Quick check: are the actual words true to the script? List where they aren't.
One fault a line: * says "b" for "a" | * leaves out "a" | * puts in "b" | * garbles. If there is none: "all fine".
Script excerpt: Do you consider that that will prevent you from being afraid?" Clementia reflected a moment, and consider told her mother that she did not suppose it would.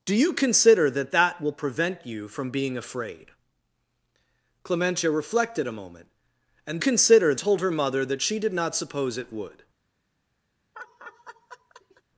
all fine